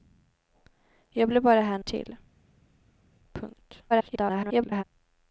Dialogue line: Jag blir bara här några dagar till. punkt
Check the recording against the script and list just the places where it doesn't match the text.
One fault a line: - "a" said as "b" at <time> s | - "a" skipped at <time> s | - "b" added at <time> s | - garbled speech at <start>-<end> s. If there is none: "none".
- "några dagar" skipped at 1.8 s
- garbled speech at 3.9-4.8 s